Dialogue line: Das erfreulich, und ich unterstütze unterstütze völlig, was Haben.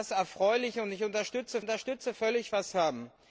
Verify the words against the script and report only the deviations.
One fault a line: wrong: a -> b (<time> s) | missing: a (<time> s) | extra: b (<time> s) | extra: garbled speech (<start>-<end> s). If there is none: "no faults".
no faults